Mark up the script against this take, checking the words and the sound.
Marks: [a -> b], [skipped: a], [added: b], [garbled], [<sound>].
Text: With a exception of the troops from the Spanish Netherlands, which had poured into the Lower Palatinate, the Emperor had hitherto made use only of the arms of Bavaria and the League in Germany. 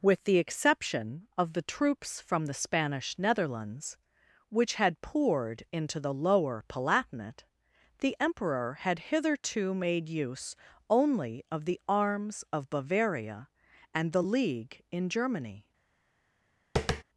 With [a -> the] exception of the troops from the Spanish Netherlands, which had poured into the Lower Palatinate, the Emperor had hitherto made use only of the arms of Bavaria and the League in Germany. [tap]